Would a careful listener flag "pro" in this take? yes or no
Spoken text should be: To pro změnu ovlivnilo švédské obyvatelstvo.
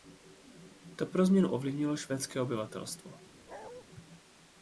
no